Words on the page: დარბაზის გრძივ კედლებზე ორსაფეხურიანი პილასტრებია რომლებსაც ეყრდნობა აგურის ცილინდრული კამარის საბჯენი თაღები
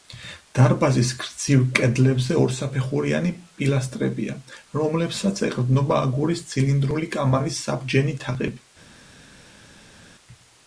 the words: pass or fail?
pass